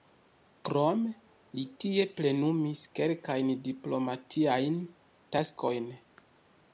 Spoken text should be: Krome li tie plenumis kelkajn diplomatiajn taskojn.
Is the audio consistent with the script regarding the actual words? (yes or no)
yes